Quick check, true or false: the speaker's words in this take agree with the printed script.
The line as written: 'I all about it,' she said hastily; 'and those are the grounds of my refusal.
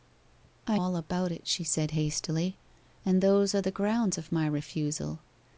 true